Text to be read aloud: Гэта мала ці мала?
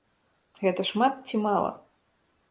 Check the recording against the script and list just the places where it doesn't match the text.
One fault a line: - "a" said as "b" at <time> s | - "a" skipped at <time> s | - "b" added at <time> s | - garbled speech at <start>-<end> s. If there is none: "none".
- "мала" said as "шмат" at 0.9 s